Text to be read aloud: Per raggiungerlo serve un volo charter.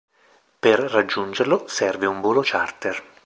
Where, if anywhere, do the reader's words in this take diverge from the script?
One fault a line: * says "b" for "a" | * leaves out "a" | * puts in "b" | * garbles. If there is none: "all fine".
all fine